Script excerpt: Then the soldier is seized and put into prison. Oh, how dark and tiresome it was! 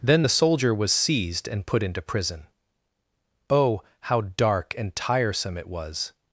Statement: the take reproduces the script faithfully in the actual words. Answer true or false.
false